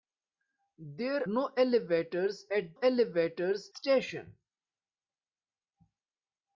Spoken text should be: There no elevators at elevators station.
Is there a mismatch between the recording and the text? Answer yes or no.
no